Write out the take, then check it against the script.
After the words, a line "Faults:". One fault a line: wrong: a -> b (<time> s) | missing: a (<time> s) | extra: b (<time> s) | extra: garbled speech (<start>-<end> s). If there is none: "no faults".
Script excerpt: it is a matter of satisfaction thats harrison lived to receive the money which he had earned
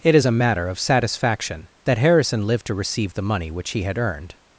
it is a matter of satisfaction that harrison lived to receive the money which he had earned
Faults:
wrong: thats -> that (1.8 s)